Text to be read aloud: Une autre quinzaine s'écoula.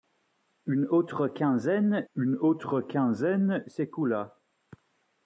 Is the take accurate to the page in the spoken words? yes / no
no